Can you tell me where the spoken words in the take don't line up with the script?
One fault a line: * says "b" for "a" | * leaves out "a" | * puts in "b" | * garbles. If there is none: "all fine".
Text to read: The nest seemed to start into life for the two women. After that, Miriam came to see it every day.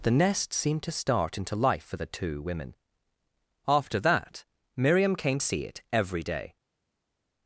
* leaves out "to"